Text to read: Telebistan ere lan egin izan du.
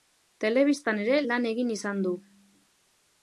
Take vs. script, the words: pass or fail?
pass